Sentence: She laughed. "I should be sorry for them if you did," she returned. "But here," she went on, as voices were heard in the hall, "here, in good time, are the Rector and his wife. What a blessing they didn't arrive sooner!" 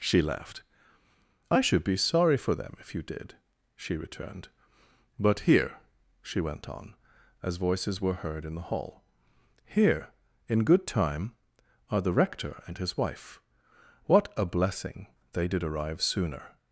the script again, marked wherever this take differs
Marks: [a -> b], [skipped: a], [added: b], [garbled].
She laughed. "I should be sorry for them if you did," she returned. "But here," she went on, as voices were heard in the hall, "here, in good time, are the Rector and his wife. What a blessing they [didn't -> did] arrive sooner!"